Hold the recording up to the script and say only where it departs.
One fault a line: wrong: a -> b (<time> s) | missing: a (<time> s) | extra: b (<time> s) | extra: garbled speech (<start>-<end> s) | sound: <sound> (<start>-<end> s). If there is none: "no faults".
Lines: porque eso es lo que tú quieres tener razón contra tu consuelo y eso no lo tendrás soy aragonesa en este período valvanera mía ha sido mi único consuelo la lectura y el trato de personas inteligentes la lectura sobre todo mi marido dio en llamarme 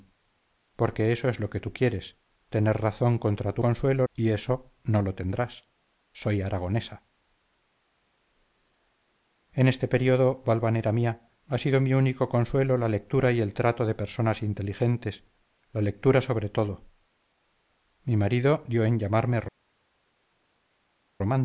no faults